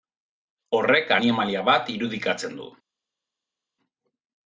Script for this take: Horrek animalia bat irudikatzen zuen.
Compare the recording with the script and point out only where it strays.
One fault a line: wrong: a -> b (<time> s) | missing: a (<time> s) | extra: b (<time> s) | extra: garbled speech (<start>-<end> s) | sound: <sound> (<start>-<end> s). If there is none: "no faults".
wrong: zuen -> du (2.6 s)